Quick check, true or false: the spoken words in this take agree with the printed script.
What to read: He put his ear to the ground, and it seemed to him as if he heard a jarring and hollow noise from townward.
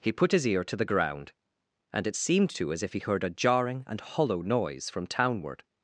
false